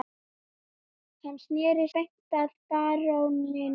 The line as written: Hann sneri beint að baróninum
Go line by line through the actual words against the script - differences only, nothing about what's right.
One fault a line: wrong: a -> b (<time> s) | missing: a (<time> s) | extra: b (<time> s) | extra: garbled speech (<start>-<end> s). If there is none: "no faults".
no faults